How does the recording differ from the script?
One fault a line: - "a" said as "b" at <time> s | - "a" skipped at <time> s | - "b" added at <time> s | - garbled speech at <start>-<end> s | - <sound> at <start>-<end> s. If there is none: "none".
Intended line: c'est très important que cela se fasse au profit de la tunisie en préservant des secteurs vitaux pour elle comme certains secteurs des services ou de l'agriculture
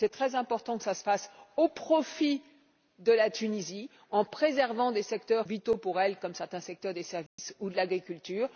- dropout at 7.3-7.4 s